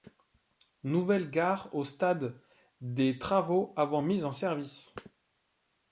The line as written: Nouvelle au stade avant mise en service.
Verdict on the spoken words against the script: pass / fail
fail